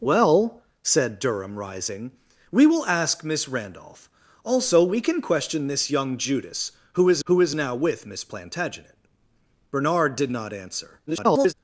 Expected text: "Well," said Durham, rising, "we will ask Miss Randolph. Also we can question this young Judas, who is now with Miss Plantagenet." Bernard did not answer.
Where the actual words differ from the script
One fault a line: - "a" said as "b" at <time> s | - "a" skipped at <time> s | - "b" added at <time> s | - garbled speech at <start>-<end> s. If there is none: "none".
- "who is" added at 7.2 s
- garbled speech at 11.1-11.5 s